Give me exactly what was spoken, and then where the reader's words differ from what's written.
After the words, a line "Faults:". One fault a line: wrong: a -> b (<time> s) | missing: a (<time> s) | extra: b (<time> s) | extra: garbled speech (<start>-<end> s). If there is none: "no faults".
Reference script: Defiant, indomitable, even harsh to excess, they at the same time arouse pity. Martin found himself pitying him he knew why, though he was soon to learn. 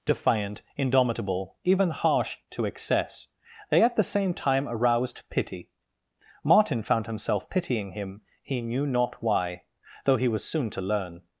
Defiant, indomitable, even harsh to excess, they at the same time aroused pity. Martin found himself pitying him he knew not why, though he was soon to learn.
Faults:
wrong: arouse -> aroused (4.7 s)
extra: not (8.8 s)